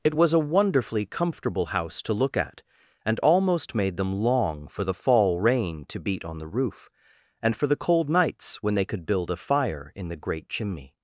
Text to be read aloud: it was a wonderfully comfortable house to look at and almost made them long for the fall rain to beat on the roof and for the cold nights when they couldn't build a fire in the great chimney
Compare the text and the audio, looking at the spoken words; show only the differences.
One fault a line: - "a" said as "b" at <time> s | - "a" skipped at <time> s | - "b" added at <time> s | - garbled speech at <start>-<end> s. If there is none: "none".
- "couldn't" said as "could" at 8.9 s